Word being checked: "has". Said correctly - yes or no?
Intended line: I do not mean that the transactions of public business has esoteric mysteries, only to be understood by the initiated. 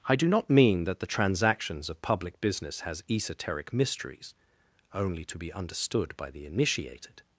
yes